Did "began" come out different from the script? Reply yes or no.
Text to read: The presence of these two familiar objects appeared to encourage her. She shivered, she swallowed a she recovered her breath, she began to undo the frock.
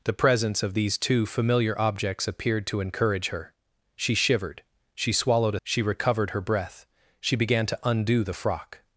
no